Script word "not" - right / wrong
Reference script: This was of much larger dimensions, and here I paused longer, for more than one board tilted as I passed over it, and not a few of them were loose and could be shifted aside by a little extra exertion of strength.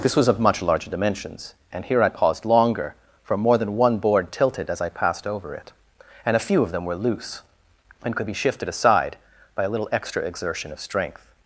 wrong